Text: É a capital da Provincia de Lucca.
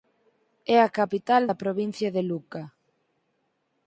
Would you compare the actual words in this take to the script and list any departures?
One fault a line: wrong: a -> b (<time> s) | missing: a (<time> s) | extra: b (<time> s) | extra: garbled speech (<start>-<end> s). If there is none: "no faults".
no faults